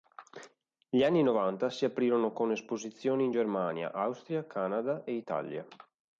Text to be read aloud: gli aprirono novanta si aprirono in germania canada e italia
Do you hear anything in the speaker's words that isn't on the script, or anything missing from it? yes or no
yes